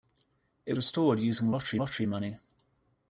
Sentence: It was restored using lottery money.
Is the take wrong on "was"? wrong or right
wrong